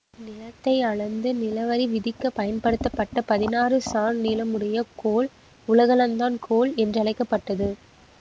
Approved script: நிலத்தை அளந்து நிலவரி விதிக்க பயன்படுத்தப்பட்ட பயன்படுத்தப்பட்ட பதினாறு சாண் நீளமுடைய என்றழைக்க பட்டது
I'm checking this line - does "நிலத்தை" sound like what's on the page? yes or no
yes